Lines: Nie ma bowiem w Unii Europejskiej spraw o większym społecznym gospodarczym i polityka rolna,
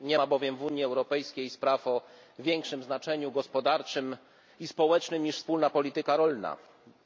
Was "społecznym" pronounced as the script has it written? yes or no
no